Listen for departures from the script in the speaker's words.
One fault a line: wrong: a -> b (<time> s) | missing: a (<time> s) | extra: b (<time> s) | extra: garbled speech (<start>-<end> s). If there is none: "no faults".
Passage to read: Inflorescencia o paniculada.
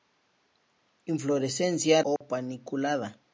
no faults